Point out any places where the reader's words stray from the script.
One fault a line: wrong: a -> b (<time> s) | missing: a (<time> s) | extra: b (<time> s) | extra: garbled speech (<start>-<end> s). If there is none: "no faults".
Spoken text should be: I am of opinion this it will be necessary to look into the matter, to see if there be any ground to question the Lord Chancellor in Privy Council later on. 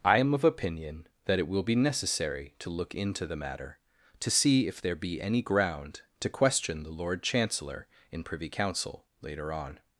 wrong: this -> that (1.2 s)